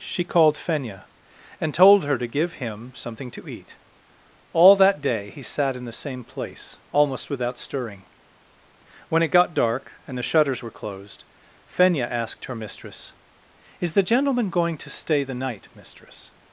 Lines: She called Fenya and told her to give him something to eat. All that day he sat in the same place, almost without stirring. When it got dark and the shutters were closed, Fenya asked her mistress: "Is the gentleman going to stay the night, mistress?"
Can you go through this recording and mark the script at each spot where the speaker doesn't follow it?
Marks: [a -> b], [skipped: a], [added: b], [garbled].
She called Fenya and told her to give him something to eat. All that day he sat in the same place, almost without stirring. When it got dark and the shutters were closed, Fenya asked her mistress: "Is the gentleman going to stay the night, mistress?"